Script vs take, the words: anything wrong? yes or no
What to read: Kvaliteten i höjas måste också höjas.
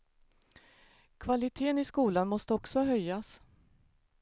yes